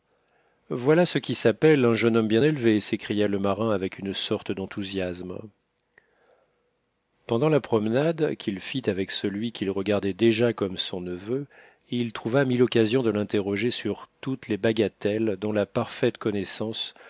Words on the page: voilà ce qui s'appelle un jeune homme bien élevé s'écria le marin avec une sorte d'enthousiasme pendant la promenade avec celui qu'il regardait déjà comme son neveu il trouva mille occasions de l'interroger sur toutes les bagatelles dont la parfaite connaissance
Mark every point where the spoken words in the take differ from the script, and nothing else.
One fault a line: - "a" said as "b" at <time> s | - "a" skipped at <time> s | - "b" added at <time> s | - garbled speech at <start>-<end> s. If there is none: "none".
- "qu'il fit" added at 8.3 s